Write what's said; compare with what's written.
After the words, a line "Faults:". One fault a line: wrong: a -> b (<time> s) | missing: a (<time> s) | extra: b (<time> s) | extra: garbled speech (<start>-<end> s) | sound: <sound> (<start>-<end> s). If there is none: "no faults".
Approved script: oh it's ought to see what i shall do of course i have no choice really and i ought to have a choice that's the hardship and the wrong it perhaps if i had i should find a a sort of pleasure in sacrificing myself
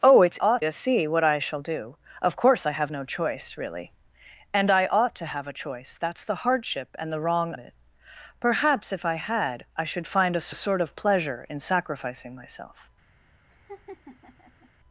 oh it's ought to see what i shall do of course i have no choice really and i ought to have a choice that's the hardship and the wrong it perhaps if i had i should find a a sort of pleasure in sacrificing myself
Faults:
sound: laugh (13.5-14.7 s)